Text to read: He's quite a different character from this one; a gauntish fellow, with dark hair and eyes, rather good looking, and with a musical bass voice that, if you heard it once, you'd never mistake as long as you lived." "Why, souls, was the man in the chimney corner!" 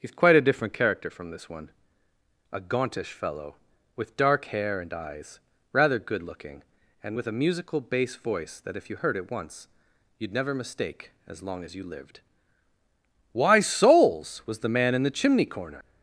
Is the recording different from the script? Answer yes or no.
no